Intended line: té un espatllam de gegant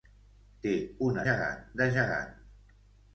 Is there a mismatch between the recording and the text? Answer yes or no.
yes